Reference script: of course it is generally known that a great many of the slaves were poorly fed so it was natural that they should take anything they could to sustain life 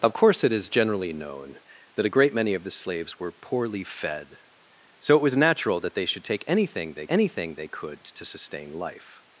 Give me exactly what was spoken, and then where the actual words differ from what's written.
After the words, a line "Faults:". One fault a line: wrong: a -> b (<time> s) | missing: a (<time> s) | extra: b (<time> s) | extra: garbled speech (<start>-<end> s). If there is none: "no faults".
of course it is generally known that a great many of the slaves were poorly fed so it was natural that they should take anything they anything they could to sustain life
Faults:
extra: anything they (7.1 s)